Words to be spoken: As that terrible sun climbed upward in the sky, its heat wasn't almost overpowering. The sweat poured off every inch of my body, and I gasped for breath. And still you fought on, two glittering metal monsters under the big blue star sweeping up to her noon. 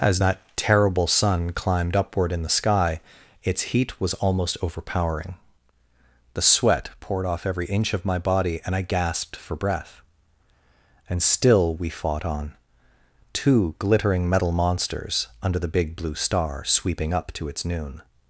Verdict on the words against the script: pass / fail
fail